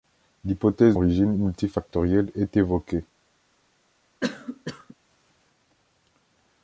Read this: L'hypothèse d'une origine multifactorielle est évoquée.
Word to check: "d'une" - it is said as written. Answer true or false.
false